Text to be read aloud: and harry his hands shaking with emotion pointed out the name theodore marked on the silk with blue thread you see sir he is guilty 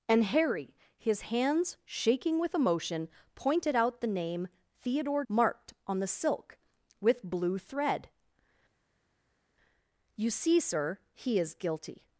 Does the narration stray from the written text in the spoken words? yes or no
no